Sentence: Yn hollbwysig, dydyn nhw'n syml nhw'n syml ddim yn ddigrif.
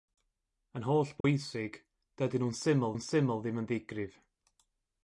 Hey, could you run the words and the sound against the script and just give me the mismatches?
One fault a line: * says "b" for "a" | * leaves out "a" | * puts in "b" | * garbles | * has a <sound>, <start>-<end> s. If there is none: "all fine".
* has a dropout, 1.2-1.2 s